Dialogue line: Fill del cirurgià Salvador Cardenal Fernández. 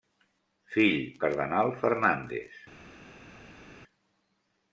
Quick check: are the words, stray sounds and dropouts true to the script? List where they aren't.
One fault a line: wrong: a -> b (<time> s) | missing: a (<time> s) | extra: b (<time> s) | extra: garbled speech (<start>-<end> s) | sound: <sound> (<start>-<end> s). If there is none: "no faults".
missing: del cirurgià Salvador (1.0 s)